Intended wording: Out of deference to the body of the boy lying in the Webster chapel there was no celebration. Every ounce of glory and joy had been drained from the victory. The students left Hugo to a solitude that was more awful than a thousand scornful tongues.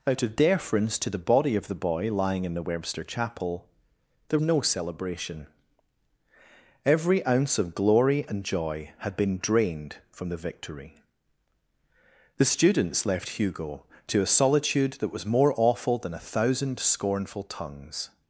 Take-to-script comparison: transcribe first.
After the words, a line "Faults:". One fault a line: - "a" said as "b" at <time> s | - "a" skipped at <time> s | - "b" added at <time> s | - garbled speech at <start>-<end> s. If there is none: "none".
Out of deference to the body of the boy lying in the Webster chapel there no celebration. Every ounce of glory and joy had been drained from the victory. The students left Hugo to a solitude that was more awful than a thousand scornful tongues.
Faults:
- "was" skipped at 4.4 s